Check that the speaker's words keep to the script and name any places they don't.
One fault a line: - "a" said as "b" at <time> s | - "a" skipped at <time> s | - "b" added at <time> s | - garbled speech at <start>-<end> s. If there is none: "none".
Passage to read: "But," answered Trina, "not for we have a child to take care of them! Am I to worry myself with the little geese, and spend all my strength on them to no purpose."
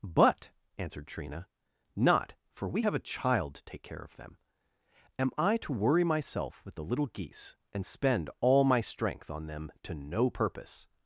none